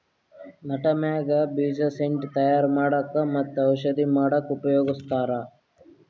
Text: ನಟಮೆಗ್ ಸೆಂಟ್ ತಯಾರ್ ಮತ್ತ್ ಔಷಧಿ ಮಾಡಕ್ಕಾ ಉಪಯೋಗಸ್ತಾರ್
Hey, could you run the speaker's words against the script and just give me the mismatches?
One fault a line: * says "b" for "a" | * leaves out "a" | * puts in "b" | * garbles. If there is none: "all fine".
* puts in "ಬೀಜ"
* puts in "ಮಾಡಕ್ಕ್"